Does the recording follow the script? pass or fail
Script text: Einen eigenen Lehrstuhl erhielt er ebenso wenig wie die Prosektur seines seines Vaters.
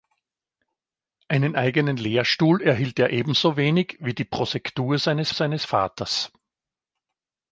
pass